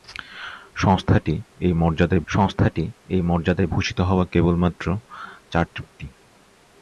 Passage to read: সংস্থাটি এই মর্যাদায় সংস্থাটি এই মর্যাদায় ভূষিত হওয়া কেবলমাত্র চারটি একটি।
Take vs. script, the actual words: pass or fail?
pass